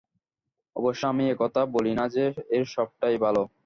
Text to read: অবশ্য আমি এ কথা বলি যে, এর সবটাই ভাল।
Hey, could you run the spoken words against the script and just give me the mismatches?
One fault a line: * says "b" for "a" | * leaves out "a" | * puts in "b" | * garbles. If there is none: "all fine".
* puts in "না"